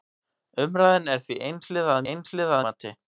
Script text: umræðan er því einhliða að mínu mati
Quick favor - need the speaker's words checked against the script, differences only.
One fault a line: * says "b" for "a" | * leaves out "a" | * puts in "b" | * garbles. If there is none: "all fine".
* says "einhliða" for "mínu"